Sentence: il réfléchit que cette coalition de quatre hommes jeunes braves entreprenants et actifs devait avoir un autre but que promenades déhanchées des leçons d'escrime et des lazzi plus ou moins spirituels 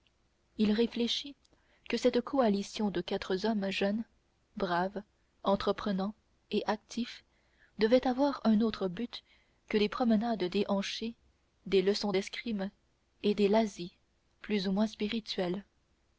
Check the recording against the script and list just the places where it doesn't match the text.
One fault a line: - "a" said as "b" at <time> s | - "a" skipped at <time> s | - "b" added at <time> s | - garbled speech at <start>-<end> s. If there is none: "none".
- "des" added at 9.7 s